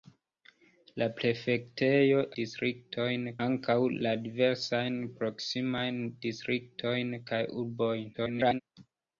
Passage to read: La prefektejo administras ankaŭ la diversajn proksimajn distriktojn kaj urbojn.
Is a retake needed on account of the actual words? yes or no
yes